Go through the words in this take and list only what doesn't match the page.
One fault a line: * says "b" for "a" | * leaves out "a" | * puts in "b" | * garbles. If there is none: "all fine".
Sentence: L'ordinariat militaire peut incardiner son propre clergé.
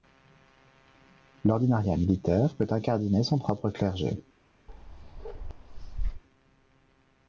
all fine